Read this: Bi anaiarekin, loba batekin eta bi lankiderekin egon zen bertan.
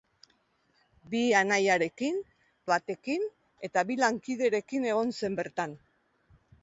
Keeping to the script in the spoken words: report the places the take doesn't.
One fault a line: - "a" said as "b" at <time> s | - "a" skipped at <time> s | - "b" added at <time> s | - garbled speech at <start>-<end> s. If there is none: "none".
- "loba" skipped at 2.2 s